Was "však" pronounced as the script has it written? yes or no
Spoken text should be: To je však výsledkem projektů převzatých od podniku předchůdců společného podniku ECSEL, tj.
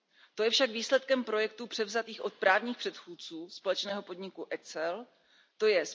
yes